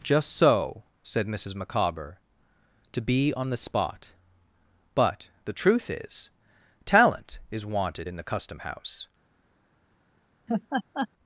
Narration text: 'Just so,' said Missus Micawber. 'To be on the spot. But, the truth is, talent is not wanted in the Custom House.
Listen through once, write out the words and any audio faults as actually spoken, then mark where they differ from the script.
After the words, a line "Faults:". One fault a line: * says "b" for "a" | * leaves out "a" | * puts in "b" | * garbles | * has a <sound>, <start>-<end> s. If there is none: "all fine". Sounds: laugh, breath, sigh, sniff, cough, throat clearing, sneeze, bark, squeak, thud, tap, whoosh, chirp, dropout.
'Just so,' said Missus Micawber. 'To be on the spot. But, the truth is, talent is wanted in the Custom House.
Faults:
* leaves out "not"
* has a laugh, 10.5-11.1 s